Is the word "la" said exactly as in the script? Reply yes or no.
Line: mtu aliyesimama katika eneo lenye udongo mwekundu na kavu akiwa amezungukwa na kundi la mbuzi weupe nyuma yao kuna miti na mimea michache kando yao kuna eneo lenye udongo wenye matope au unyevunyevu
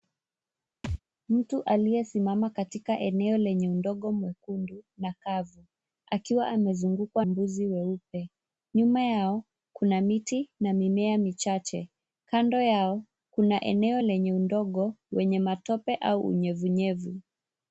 no